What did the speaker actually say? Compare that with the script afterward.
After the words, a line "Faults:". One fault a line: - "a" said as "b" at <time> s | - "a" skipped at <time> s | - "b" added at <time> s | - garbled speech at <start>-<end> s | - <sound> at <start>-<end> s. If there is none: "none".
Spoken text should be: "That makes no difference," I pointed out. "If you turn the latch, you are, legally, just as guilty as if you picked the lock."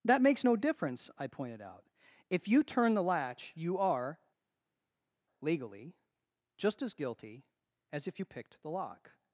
"That makes no difference," I pointed out. "If you turn the latch, you are, legally, just as guilty as if you picked the lock."
Faults:
none